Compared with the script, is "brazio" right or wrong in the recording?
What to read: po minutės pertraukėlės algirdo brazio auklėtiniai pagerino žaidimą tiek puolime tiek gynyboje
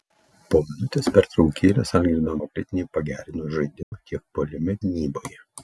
wrong